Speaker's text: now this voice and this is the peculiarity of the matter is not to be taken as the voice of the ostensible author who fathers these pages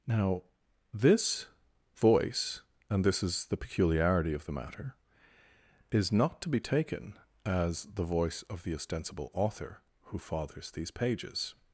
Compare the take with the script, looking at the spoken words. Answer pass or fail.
pass